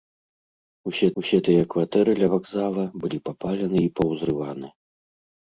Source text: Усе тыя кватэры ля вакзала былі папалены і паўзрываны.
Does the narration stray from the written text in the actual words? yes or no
yes